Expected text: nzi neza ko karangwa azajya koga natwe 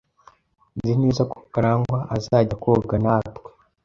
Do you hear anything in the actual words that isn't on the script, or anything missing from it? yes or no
no